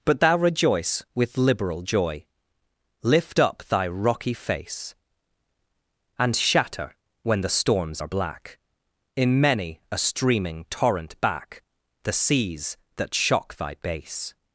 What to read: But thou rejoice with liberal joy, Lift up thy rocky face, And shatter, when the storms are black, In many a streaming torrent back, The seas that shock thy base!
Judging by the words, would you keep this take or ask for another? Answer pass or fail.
pass